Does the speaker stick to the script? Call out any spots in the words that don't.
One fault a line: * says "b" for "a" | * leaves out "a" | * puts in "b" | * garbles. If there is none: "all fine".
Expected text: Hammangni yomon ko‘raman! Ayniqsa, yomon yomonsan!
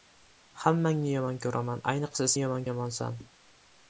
all fine